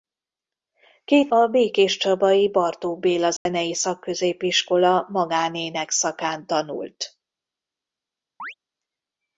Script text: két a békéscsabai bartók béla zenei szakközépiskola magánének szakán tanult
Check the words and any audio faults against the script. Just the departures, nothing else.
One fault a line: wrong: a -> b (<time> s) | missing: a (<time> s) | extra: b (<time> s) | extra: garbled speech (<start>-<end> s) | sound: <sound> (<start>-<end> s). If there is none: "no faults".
sound: dropout (3.4-3.5 s)
sound: chirp (8.4-8.5 s)